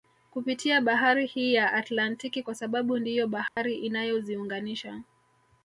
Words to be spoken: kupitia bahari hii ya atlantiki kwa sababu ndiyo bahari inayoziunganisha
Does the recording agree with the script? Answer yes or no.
yes